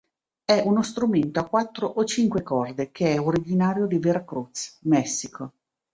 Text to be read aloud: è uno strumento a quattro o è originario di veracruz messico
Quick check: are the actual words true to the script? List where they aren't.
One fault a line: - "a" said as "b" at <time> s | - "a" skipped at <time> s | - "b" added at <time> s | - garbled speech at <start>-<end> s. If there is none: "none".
- "cinque corde che" added at 2.0 s